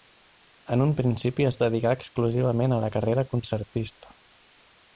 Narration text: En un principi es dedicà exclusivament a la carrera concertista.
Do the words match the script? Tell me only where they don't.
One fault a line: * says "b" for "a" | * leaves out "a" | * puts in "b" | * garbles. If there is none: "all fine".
all fine